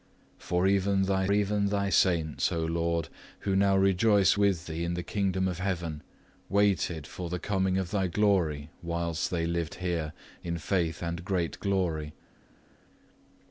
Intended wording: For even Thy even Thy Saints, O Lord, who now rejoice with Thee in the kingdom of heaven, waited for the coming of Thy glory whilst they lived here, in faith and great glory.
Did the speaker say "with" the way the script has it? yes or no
yes